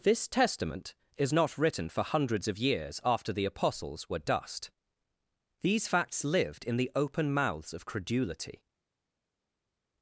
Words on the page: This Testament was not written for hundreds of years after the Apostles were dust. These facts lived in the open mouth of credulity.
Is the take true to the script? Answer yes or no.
no